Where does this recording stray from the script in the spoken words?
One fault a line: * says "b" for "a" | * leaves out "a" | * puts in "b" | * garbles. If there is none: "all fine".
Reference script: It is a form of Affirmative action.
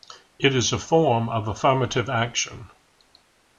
all fine